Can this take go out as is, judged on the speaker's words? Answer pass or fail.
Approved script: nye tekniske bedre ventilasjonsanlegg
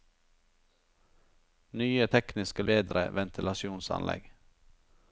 pass